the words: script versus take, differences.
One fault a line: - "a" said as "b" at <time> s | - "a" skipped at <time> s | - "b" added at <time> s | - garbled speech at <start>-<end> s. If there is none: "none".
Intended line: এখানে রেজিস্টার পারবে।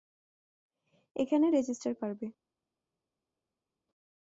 none